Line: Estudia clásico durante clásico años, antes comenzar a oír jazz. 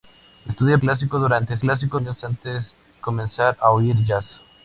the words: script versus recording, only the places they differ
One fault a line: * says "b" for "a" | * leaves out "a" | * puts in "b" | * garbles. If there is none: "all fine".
all fine